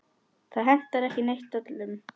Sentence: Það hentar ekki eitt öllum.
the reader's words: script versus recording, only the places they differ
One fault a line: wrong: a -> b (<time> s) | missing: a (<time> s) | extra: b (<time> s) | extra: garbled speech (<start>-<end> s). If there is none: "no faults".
no faults